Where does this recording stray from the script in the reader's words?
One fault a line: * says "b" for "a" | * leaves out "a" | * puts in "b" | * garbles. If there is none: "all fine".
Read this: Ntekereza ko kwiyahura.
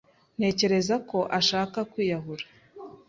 * puts in "ashaka"